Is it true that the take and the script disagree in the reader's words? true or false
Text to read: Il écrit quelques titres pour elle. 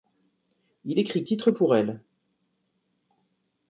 true